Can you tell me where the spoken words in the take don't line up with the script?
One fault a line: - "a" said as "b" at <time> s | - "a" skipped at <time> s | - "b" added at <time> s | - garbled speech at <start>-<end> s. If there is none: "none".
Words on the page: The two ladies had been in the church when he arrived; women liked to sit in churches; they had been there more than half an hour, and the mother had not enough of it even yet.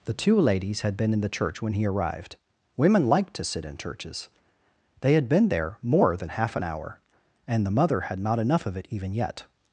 none